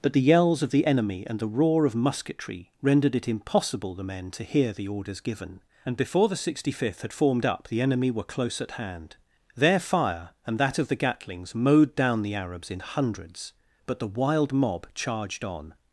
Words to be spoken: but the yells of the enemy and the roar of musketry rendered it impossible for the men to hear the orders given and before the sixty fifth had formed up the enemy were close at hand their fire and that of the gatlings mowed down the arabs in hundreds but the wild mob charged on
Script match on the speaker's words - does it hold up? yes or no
no